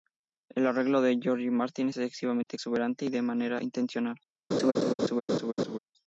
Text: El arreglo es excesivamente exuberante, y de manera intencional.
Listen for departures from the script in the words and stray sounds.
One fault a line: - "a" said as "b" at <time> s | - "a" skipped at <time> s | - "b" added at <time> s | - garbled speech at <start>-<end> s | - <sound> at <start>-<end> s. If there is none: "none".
- "de George Martin" added at 1.0 s
- dropout at 2.4-2.5 s
- laugh at 4.5-5.8 s